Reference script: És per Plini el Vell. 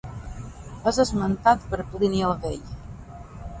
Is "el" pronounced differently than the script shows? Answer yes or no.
no